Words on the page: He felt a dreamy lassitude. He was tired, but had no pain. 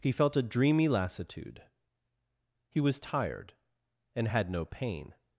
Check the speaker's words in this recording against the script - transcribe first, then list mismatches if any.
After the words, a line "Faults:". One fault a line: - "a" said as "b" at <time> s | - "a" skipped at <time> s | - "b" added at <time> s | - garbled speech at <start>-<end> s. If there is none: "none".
He felt a dreamy lassitude. He was tired, and had no pain.
Faults:
- "but" said as "and" at 4.2 s